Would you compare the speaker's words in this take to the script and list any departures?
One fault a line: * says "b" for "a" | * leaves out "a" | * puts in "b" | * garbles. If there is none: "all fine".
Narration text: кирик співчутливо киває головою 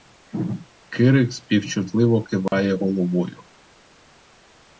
all fine